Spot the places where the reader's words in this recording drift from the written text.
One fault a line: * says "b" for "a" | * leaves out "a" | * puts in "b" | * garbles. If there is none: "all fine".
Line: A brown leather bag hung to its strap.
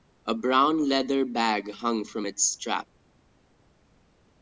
* says "from" for "to"